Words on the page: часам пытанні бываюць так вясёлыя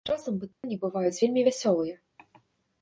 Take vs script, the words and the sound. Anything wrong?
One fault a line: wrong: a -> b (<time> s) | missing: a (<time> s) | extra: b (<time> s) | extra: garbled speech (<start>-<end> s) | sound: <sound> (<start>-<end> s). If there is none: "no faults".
sound: dropout (0.5-0.6 s)
wrong: так -> вельмі (1.2 s)